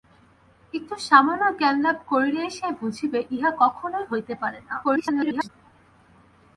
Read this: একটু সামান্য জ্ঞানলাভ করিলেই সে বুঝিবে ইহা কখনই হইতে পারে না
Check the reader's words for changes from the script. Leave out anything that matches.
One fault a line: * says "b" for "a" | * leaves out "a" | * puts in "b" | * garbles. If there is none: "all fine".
* garbles